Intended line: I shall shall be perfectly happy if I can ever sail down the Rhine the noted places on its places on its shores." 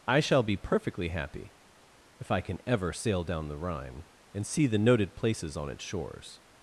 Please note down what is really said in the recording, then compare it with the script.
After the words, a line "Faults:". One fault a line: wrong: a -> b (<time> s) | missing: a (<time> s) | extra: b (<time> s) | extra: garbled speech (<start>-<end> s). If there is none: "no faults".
I shall be perfectly happy if I can ever sail down the Rhine and see the noted places on its shores."
Faults:
missing: shall (0.4 s)
extra: and see (4.3 s)
missing: places on its (5.8 s)